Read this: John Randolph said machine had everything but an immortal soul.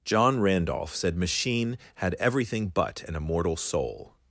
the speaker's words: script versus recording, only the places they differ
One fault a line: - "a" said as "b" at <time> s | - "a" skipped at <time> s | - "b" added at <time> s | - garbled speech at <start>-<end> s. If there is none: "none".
none